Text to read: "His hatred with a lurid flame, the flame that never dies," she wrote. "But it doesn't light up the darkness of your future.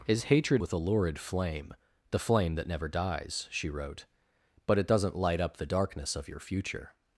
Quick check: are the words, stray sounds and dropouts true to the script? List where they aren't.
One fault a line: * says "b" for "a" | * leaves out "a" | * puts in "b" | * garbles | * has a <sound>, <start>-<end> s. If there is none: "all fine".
all fine